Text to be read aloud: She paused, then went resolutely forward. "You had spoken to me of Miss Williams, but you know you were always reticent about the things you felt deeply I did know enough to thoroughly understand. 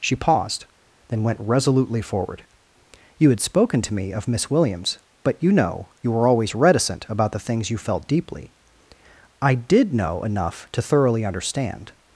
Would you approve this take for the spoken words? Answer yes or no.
yes